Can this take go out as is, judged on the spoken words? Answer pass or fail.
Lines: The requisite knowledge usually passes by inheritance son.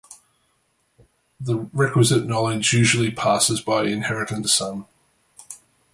pass